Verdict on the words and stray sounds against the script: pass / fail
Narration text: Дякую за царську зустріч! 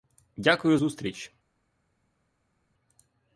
fail